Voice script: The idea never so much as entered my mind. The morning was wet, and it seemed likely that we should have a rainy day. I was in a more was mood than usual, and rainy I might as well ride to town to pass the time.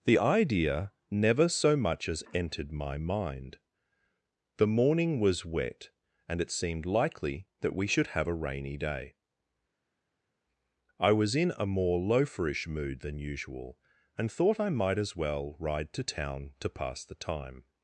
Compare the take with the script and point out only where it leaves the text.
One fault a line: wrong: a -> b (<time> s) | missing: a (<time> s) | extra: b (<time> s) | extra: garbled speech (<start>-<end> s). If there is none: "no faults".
wrong: was -> loaferish (12.0 s)
wrong: rainy -> thought (14.3 s)